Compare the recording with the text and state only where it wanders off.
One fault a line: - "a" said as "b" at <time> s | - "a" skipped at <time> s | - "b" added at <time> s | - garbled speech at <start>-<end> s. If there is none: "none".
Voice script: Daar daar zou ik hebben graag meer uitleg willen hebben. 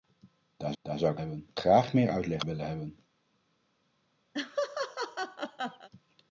none